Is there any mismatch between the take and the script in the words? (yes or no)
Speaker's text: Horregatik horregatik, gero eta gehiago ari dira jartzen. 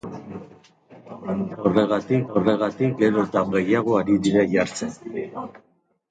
no